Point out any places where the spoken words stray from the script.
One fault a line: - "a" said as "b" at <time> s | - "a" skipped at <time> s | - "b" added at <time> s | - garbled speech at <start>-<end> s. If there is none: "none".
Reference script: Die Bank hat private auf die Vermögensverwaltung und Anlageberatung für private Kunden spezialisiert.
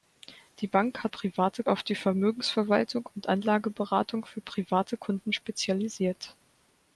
none